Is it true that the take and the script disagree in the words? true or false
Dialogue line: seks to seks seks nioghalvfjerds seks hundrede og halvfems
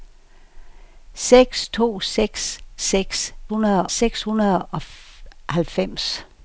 true